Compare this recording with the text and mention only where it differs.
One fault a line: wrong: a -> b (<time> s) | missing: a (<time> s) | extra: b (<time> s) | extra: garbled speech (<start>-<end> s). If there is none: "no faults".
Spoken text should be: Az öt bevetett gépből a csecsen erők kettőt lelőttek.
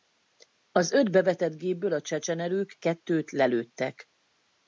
no faults